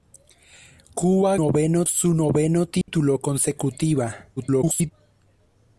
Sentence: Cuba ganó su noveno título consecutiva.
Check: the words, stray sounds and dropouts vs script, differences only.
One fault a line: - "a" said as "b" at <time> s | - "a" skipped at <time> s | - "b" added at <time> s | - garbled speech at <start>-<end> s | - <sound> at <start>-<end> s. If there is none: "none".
- "ganó" said as "noveno" at 1.3 s
- dropout at 2.8-2.9 s
- garbled speech at 4.4-4.9 s